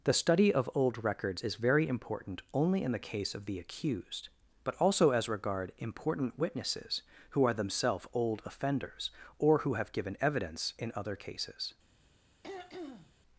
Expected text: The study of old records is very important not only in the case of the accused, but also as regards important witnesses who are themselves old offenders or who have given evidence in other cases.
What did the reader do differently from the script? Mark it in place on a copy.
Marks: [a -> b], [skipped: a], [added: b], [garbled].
The study of old records is very important [skipped: not] only in the case of the accused, but also as [regards -> regard] important witnesses who are themselves old offenders or who have given evidence in other cases.